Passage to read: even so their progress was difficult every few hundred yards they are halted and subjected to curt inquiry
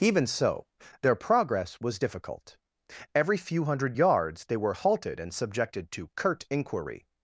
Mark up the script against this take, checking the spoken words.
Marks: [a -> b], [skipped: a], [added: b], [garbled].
even so their progress was difficult every few hundred yards they [are -> were] halted and subjected to curt inquiry